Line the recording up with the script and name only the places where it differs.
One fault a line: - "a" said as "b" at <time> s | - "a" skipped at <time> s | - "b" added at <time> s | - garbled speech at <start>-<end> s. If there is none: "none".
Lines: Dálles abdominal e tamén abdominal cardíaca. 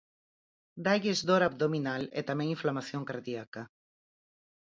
- "dor" added at 1.3 s
- "abdominal" said as "inflamación" at 2.5 s